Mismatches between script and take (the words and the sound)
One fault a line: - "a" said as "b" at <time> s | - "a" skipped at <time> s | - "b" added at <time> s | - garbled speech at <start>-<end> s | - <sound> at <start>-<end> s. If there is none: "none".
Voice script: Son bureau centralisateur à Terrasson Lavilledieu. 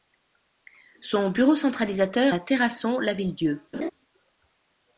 - laugh at 3.7-3.9 s